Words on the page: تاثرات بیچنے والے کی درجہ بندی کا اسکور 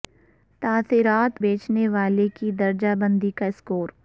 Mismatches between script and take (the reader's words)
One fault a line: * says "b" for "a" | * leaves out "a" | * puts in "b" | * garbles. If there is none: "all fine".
all fine